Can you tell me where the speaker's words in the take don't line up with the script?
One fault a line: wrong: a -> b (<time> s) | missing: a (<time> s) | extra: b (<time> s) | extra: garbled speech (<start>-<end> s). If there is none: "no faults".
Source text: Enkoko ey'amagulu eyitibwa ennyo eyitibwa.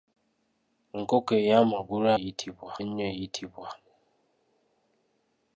no faults